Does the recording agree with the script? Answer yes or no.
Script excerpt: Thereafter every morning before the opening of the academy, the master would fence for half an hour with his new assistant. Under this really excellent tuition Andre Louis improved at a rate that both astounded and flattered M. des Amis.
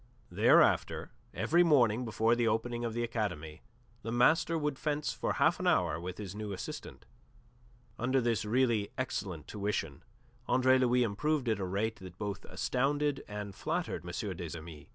yes